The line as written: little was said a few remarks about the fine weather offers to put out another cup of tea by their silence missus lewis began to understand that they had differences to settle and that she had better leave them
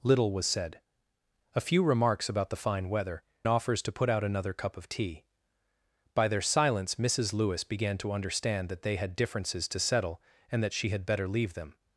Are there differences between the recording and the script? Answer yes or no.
no